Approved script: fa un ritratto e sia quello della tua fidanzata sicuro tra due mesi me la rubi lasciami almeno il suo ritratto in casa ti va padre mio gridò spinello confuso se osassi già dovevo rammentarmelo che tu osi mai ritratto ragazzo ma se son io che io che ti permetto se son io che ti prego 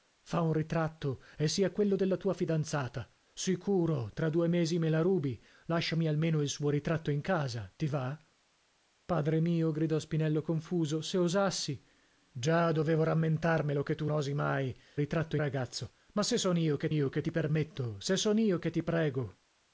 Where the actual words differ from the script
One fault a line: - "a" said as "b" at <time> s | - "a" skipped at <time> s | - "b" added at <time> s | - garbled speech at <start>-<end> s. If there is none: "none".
none